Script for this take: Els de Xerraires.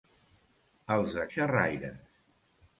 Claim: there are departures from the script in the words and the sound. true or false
false